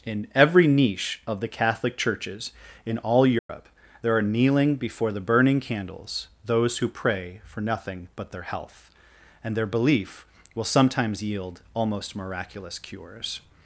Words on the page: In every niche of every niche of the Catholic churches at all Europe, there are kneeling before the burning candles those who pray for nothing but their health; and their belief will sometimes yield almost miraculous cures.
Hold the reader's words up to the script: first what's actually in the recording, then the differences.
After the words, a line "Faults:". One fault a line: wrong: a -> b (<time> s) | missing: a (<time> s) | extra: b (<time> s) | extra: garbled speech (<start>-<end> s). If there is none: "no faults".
In every niche of the Catholic churches in all Europe, there are kneeling before the burning candles those who pray for nothing but their health; and their belief will sometimes yield almost miraculous cures.
Faults:
missing: every niche of (1.4 s)
wrong: at -> in (2.9 s)